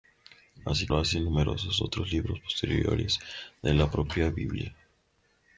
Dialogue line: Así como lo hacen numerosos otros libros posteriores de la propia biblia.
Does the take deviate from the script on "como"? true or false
true